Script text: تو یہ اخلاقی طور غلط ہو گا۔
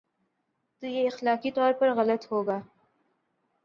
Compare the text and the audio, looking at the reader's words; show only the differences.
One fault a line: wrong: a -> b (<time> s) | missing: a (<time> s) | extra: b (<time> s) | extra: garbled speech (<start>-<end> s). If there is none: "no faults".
extra: پر (1.7 s)